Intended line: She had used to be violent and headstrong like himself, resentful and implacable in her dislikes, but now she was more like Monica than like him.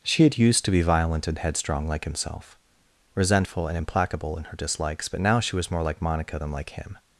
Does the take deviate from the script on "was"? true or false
false